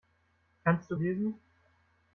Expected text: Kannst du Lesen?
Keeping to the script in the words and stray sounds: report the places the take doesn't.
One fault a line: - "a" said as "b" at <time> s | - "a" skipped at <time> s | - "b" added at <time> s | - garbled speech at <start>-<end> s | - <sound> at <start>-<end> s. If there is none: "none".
none